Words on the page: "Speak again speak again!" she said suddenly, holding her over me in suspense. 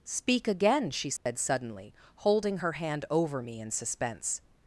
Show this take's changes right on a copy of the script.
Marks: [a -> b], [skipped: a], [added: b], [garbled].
"Speak again [skipped: speak again!"] she said suddenly, holding her [added: hand] over me in suspense.